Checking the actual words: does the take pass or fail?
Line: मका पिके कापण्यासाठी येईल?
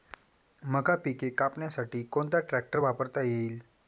fail